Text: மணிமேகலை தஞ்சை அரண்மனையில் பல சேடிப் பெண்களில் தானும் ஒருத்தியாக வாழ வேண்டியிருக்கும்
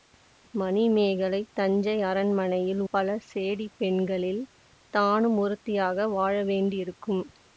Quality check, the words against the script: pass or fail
pass